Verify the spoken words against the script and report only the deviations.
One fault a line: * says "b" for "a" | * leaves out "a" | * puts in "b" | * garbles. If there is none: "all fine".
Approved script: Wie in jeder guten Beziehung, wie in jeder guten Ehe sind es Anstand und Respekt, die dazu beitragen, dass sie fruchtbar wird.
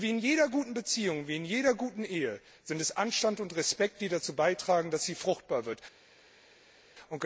all fine